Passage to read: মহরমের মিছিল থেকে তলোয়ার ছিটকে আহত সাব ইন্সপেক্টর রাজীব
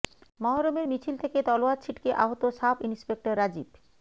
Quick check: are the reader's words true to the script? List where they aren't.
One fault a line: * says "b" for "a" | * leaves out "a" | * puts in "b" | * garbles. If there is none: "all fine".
all fine